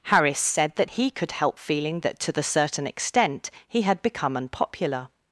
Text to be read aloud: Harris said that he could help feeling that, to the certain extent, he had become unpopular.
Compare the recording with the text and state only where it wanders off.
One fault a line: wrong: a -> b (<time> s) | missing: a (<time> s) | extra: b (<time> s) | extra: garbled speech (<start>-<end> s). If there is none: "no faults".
no faults